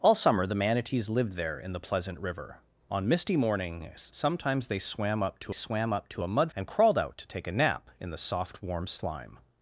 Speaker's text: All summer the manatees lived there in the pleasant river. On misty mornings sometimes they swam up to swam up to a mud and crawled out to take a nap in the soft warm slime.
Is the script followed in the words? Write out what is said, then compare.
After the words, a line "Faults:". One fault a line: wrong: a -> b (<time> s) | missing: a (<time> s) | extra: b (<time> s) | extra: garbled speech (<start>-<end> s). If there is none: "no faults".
All summer the manatees lived there in the pleasant river. On misty mornings sometimes they swam up to swam up to a mud and crawled out to take a nap in the soft warm slime.
Faults:
no faults